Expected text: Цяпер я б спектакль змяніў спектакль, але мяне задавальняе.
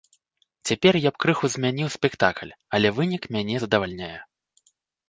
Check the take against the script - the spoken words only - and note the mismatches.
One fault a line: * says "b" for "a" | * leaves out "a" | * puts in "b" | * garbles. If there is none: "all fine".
* says "крыху" for "спектакль"
* puts in "вынік"